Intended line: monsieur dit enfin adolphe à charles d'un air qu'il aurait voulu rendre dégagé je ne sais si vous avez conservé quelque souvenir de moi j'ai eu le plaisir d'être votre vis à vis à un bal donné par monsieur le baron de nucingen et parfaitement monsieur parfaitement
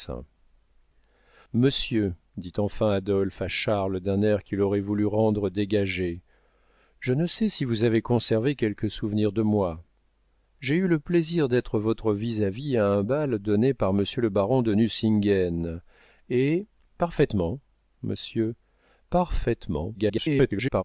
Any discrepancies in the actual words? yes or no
yes